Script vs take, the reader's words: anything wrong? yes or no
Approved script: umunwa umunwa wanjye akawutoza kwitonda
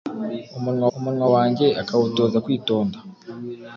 no